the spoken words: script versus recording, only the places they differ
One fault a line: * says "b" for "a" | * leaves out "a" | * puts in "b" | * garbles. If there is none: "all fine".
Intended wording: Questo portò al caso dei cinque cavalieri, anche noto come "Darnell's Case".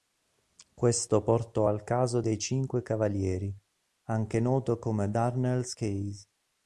all fine